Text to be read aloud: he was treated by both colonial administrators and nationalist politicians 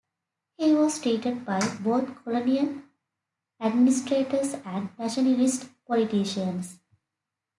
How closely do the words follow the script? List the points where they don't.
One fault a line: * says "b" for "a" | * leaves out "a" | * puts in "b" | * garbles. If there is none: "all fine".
all fine